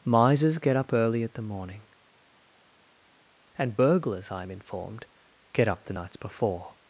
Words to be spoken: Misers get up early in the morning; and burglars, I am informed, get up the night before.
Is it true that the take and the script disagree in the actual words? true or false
true